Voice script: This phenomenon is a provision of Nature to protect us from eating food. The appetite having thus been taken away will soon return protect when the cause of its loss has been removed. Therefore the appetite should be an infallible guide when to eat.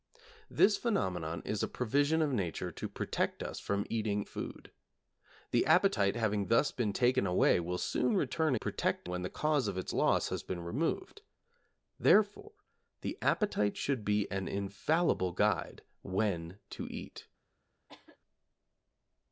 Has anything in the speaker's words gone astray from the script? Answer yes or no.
no